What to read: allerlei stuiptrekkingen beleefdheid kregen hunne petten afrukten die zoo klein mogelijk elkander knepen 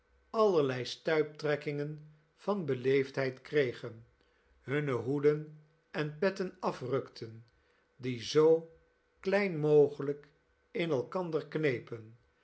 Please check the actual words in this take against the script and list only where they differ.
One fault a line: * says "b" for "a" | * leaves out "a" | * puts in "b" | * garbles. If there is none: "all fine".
* puts in "van"
* puts in "hoeden en"
* puts in "in"